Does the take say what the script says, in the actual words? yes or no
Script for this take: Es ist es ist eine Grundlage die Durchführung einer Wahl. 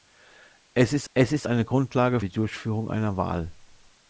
yes